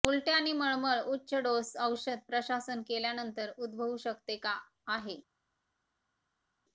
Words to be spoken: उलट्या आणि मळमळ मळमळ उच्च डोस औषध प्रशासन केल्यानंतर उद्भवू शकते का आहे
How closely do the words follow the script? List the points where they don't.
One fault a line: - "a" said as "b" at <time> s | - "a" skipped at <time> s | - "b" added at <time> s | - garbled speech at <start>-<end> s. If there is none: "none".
- "मळमळ" skipped at 1.0 s